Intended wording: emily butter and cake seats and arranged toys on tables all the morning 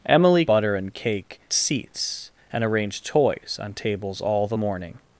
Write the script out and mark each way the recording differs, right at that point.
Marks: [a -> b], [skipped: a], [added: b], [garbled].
emily butter and cake seats and arranged toys on tables all the morning